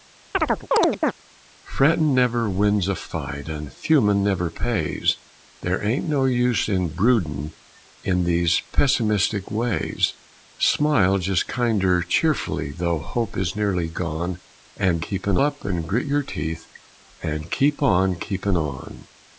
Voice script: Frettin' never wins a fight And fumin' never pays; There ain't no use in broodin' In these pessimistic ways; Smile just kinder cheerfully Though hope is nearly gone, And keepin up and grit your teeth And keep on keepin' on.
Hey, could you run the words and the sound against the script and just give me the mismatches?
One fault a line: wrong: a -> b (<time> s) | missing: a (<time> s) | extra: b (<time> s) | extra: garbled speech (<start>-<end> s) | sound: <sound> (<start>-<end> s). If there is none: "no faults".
sound: chirp (0.3-1.1 s)